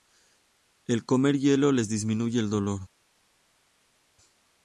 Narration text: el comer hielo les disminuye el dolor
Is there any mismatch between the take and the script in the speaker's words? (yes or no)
no